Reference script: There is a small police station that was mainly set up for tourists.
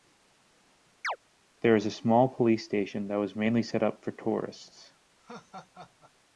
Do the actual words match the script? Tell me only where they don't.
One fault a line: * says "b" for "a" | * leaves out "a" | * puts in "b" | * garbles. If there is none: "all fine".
all fine